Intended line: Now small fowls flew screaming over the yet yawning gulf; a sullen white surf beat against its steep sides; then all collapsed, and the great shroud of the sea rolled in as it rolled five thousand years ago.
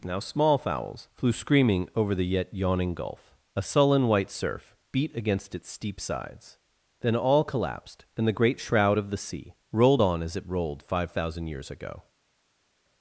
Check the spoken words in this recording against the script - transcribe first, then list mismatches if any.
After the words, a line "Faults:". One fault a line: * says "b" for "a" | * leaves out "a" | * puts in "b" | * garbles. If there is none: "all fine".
Now small fowls flew screaming over the yet yawning gulf; a sullen white surf beat against its steep sides; then all collapsed, and the great shroud of the sea rolled on as it rolled five thousand years ago.
Faults:
* says "on" for "in"